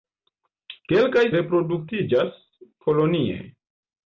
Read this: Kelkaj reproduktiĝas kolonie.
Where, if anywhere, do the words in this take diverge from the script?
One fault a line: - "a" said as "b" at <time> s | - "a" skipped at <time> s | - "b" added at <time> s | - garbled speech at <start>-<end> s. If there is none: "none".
none